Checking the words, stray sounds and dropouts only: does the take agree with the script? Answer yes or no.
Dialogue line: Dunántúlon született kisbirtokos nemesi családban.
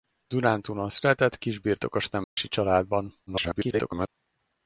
no